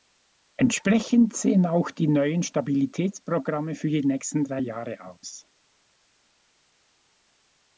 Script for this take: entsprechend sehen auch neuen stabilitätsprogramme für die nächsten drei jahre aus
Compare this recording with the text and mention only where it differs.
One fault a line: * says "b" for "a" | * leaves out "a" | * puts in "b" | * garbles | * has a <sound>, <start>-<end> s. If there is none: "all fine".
* puts in "die"